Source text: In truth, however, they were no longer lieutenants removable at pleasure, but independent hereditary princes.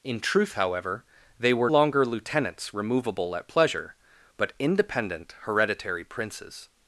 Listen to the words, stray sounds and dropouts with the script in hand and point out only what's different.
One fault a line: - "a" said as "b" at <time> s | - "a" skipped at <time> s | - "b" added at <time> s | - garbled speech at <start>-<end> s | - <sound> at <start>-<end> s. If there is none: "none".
- "no" skipped at 1.7 s